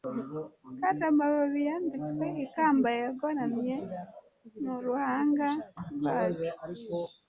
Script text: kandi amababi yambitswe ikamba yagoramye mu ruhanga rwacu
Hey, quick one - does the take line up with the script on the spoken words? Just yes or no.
yes